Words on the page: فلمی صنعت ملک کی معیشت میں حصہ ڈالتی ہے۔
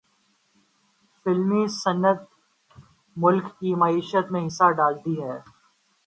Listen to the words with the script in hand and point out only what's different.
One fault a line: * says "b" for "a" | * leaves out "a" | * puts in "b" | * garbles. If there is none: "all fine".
all fine